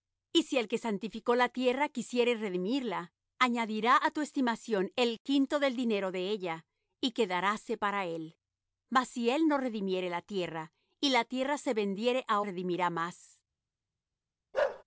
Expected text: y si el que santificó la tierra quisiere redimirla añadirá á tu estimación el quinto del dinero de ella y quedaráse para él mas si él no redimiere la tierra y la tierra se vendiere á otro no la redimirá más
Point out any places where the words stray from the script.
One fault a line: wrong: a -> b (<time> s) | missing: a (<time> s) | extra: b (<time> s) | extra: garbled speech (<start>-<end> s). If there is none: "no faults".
missing: otro no la (12.4 s)